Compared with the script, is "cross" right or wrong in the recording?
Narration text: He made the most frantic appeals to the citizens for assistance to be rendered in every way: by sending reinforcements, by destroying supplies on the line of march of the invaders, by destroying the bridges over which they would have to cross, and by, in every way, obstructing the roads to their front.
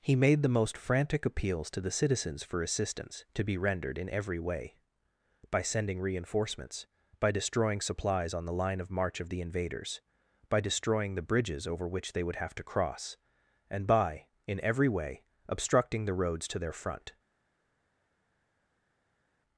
right